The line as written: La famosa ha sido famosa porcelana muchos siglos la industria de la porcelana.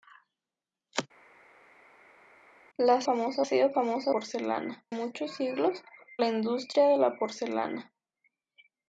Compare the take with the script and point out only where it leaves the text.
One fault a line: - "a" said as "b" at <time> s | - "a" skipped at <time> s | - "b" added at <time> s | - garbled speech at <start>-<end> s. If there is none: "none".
none